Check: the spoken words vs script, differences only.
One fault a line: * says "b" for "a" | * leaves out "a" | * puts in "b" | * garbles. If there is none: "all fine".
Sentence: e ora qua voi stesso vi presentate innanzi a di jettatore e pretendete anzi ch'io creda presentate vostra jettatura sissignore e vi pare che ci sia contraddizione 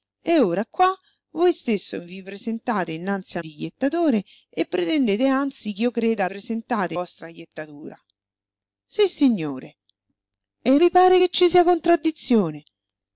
all fine